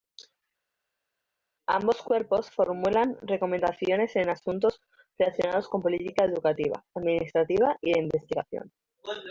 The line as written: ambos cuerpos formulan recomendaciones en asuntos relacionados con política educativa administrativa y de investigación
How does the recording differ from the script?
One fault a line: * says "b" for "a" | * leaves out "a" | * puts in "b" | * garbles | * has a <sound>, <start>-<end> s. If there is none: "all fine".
all fine